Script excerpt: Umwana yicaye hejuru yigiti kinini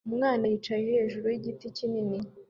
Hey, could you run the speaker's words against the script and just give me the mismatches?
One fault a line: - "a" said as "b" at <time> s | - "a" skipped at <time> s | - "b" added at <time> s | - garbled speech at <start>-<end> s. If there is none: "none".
none